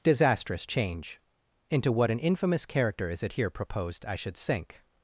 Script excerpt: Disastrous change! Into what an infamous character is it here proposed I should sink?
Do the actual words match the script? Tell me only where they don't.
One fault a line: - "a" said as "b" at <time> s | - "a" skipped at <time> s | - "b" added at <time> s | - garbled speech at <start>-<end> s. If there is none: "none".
none